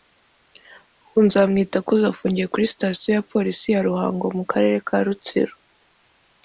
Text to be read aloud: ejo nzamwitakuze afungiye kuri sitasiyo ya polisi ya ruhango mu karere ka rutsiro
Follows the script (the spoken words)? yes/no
no